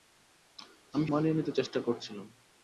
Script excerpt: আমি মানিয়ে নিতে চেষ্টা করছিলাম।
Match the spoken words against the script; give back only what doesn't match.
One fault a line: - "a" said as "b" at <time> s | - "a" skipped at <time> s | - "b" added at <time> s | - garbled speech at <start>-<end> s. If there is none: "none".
none